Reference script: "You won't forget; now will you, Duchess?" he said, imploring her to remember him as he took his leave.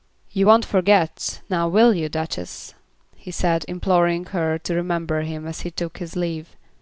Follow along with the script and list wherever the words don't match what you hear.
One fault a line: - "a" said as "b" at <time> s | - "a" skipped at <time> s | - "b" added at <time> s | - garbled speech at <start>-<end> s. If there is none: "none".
none